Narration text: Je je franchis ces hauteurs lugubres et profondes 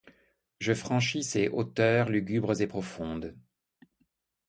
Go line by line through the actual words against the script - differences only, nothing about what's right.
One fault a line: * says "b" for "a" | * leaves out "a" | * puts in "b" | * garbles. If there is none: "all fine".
* leaves out "je"